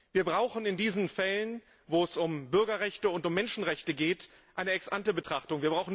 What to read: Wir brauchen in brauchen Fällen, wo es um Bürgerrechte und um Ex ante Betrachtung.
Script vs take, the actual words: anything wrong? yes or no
yes